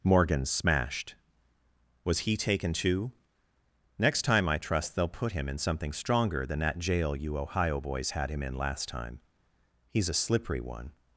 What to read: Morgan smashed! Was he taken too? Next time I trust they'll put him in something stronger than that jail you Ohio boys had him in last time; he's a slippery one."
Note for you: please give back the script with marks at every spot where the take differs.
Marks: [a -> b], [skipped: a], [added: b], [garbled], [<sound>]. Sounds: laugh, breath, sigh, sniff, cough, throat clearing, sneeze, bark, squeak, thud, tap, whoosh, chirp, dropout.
Morgan smashed! Was he taken too? Next time I trust they'll put him in something stronger than that jail you Ohio boys had him in last time; he's a slippery one."